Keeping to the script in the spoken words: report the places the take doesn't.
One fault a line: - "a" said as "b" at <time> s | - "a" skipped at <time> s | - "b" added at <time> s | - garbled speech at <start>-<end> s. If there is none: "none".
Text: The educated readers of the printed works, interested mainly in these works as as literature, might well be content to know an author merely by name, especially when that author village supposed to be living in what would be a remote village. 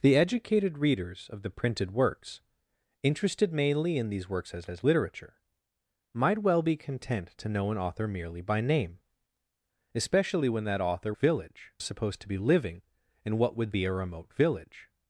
none